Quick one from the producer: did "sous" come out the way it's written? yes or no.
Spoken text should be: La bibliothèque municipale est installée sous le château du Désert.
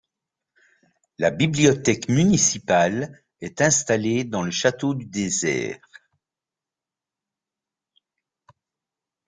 no